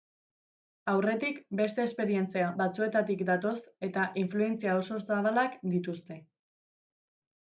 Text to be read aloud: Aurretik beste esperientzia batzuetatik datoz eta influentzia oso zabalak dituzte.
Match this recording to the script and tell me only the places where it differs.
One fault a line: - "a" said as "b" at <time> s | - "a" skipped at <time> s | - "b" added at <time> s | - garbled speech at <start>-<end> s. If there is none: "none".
none